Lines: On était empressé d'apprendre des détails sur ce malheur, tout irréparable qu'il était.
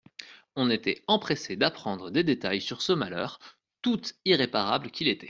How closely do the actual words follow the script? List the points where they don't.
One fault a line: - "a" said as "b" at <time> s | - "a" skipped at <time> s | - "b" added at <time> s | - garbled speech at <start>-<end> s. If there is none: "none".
none